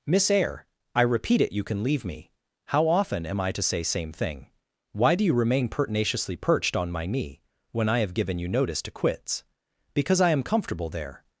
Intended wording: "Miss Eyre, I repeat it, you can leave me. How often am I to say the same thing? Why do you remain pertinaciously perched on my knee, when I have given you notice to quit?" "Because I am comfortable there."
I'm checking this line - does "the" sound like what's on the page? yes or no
no